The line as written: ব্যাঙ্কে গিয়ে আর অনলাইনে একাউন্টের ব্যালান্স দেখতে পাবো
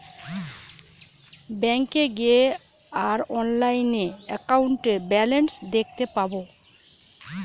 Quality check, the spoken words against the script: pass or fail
pass